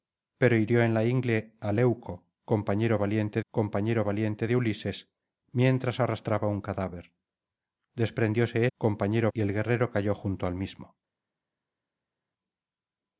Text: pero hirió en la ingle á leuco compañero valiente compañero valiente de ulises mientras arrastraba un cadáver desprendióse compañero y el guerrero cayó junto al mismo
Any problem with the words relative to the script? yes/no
no